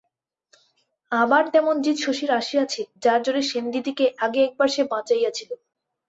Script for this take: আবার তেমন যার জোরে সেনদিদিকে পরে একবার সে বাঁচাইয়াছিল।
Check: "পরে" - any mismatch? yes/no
yes